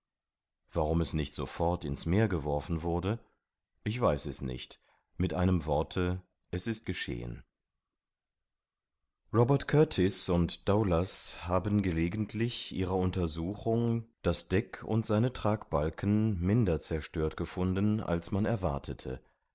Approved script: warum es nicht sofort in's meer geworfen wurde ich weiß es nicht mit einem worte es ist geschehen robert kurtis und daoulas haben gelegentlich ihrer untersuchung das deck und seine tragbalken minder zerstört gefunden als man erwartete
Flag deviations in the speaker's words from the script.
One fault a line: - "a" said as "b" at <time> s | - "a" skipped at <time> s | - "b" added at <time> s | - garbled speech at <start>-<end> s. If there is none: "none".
none